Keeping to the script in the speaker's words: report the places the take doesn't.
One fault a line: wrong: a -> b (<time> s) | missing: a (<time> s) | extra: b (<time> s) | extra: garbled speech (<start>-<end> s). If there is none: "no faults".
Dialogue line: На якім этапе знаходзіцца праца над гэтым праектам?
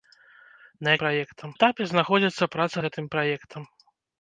wrong: якім -> праектам (1.1 s)
missing: над (2.8 s)